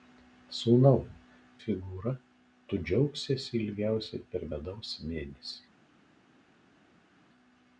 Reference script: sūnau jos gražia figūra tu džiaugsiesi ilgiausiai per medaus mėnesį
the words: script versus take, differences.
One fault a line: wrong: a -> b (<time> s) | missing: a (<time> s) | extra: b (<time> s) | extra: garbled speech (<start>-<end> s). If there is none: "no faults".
missing: jos gražia (1.0 s)